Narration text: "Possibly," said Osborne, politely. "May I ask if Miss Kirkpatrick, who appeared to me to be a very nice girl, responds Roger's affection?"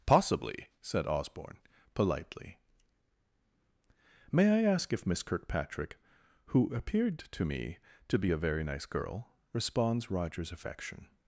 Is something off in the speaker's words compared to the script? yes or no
no